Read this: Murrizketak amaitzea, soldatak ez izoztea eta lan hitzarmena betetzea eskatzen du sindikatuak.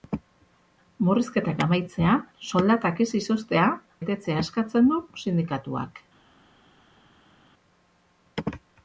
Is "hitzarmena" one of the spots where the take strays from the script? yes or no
yes